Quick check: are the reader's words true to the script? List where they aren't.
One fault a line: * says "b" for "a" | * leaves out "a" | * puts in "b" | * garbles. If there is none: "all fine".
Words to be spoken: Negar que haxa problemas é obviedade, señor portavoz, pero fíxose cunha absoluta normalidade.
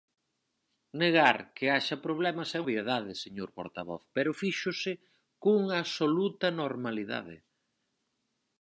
all fine